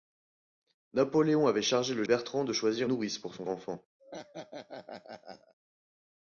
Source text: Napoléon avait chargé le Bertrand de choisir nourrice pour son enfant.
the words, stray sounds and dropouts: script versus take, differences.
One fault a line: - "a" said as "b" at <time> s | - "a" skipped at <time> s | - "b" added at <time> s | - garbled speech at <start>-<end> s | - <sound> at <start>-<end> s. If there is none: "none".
- laugh at 4.0-5.5 s